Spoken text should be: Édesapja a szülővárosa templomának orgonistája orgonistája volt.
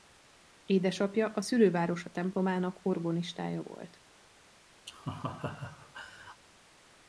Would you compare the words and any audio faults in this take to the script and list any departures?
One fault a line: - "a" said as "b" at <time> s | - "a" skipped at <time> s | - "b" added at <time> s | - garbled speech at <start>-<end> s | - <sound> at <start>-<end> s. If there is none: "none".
- "orgonistája" skipped at 3.6 s
- laugh at 4.9-6.4 s